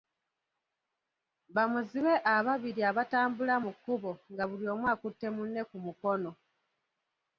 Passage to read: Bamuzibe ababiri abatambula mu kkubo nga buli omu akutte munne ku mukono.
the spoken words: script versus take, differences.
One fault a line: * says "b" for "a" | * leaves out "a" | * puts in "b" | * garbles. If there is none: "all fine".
all fine